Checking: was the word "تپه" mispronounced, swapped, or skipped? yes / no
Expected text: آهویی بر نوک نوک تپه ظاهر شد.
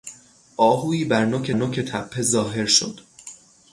no